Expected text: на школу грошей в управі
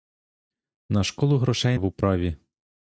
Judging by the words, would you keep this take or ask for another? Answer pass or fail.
pass